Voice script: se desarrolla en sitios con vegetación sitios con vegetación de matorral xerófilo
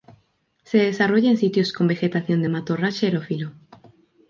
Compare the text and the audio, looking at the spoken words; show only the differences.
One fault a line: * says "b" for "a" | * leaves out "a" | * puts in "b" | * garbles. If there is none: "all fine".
* leaves out "sitios con vegetación"